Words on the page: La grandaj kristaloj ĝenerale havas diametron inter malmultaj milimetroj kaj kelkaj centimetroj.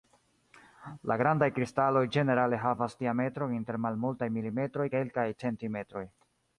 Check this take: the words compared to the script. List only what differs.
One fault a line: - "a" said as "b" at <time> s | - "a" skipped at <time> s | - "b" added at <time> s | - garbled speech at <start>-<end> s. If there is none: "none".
- "kaj" skipped at 4.9 s